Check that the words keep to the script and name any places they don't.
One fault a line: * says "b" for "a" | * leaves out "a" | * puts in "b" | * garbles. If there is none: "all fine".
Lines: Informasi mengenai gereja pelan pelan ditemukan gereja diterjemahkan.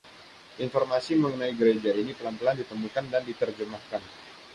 * puts in "ini"
* says "dan" for "gereja"